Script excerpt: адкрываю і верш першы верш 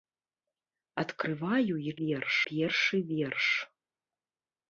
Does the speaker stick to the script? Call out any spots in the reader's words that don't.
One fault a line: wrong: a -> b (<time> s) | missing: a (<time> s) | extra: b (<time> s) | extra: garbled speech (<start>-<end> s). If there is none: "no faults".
no faults